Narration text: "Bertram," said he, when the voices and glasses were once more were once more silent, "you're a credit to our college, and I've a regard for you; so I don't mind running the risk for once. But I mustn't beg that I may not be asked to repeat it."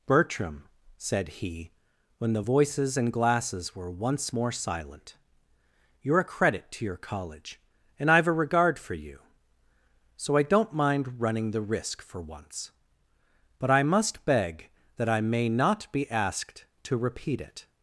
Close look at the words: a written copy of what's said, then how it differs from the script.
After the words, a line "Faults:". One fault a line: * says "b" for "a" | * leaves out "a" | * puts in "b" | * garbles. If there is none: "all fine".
"Bertram," said he, when the voices and glasses were once more silent, "you're a credit to your college, and I've a regard for you; so I don't mind running the risk for once. But I must beg that I may not be asked to repeat it."
Faults:
* leaves out "were once more"
* says "your" for "our"
* says "must" for "mustn't"